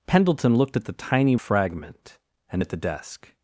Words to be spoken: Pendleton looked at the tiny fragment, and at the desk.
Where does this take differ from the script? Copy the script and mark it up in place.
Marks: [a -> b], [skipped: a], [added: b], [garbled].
Pendleton looked at the tiny fragment, and at the desk.